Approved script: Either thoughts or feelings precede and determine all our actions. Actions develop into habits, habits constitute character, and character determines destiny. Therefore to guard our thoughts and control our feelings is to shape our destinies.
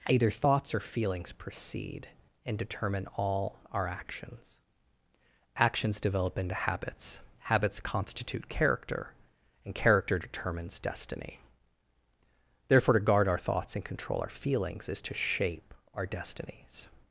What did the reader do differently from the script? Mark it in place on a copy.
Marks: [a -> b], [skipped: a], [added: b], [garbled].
Either thoughts or feelings precede and determine all our actions. Actions develop into habits, habits constitute character, and character determines destiny. Therefore to guard our thoughts and control our feelings is to shape our destinies.